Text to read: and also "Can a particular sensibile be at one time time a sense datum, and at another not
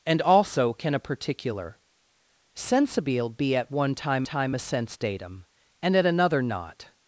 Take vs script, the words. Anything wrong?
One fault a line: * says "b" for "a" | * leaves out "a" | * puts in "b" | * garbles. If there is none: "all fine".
all fine